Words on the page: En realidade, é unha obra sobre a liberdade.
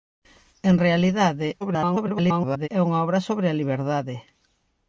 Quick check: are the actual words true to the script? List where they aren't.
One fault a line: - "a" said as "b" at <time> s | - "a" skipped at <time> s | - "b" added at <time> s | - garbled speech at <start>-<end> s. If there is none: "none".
- garbled speech at 1.6-2.7 s